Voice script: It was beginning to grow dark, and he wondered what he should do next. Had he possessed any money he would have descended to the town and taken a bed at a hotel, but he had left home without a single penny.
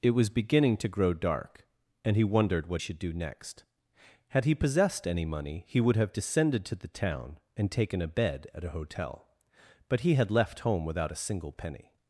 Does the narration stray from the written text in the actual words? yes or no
yes